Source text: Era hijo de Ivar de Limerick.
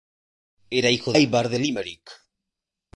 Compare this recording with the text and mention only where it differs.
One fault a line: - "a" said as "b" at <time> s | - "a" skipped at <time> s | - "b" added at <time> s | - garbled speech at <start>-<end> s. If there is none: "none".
- "de" skipped at 1.1 s